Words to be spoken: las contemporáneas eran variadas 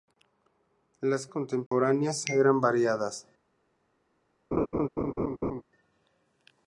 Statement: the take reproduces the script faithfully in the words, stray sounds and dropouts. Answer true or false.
false